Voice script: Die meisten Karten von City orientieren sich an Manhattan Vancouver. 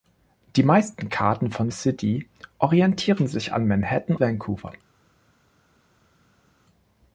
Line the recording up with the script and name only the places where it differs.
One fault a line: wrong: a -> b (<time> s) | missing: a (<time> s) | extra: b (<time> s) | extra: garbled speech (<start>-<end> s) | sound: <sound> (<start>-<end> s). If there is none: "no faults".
no faults